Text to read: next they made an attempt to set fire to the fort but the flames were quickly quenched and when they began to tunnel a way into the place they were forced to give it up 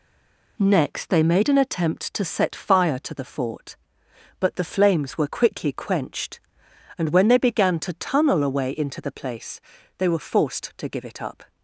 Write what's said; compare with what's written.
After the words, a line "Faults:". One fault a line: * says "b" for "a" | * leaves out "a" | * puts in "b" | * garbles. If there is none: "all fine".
next they made an attempt to set fire to the fort but the flames were quickly quenched and when they began to tunnel a way into the place they were forced to give it up
Faults:
all fine